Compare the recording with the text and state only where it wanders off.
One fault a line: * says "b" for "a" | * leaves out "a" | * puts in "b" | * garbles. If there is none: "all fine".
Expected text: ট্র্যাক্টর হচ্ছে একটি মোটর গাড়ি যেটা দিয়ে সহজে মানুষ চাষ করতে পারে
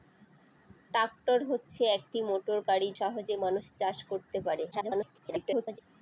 * leaves out "যেটা দিয়ে"
* garbles